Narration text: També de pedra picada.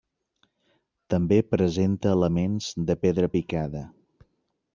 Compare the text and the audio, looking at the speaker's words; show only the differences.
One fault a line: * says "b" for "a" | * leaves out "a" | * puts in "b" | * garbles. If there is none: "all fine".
* puts in "presenta elements"